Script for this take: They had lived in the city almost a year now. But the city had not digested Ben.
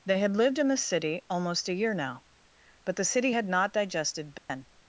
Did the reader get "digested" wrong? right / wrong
right